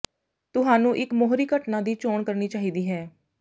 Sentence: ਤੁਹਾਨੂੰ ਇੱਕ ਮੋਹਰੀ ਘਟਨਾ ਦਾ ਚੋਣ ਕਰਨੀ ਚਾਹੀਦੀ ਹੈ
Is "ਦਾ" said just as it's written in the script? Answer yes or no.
no